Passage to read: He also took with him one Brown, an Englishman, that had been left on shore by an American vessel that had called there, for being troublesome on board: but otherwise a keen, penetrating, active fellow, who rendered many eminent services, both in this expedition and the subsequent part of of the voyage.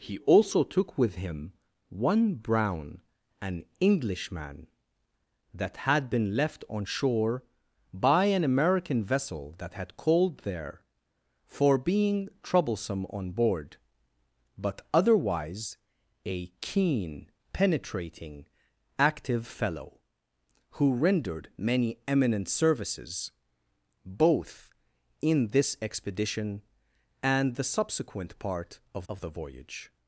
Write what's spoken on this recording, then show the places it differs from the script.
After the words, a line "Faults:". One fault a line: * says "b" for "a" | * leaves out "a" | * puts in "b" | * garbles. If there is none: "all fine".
He also took with him one Brown, an Englishman, that had been left on shore by an American vessel that had called there, for being troublesome on board: but otherwise a keen, penetrating, active fellow, who rendered many eminent services, both in this expedition and the subsequent part of of the voyage.
Faults:
all fine